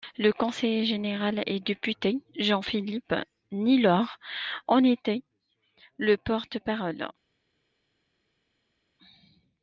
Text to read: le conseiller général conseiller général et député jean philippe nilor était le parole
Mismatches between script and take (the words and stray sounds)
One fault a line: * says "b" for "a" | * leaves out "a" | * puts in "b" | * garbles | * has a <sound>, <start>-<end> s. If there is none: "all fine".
* leaves out "conseiller général"
* puts in "en"
* puts in "porte"